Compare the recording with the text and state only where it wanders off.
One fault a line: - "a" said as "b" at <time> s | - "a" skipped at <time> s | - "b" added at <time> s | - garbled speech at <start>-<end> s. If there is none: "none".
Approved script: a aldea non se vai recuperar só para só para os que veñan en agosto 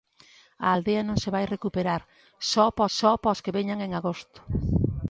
none